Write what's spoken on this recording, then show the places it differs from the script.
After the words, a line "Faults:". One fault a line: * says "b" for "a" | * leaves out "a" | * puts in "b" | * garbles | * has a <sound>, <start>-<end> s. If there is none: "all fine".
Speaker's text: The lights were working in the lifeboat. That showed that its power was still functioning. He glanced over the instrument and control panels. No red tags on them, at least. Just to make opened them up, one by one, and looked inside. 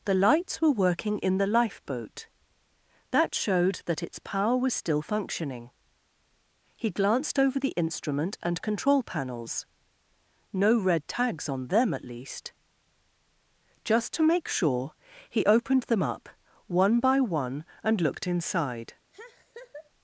The lights were working in the lifeboat. That showed that its power was still functioning. He glanced over the instrument and control panels. No red tags on them, at least. Just to make sure, he opened them up, one by one, and looked inside.
Faults:
* puts in "sure he"
* has a laugh, 19.1-19.9 s